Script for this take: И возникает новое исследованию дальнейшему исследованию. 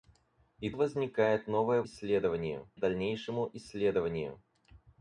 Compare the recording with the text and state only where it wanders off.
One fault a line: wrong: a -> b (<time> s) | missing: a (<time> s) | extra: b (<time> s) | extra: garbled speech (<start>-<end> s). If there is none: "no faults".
no faults